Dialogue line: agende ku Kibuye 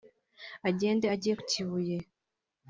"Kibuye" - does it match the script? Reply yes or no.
yes